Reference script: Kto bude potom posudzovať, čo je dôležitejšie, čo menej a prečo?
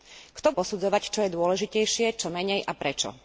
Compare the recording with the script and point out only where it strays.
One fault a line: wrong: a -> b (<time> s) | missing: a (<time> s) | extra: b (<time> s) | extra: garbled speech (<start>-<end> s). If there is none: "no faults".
missing: bude potom (0.6 s)